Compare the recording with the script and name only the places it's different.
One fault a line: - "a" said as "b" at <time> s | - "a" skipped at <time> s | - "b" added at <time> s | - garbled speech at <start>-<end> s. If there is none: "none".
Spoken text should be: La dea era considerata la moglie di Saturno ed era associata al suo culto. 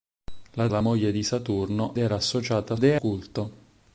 - "dea era considerata" skipped at 0.7 s
- "ed" skipped at 1.9 s
- "suo" said as "dea" at 2.7 s